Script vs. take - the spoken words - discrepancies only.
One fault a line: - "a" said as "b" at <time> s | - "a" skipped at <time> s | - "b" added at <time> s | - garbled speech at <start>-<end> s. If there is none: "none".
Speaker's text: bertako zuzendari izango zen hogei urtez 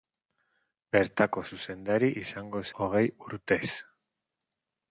- "zen" skipped at 2.6 s